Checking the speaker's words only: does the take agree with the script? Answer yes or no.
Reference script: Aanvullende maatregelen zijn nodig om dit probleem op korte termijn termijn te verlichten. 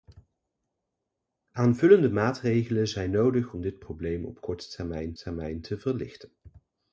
yes